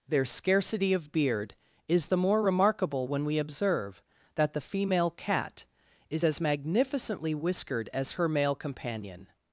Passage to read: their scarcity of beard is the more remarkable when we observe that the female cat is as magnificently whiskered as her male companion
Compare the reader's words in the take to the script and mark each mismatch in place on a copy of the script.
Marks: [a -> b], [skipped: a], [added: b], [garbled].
their scarcity of beard is the more remarkable when we observe that the female cat is as magnificently whiskered as her male companion